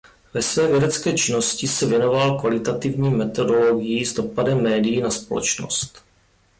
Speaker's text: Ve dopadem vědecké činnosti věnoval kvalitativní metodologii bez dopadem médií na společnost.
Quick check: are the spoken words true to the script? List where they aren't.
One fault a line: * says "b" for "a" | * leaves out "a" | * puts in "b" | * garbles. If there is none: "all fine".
* says "své" for "dopadem"
* puts in "se"
* says "s" for "bez"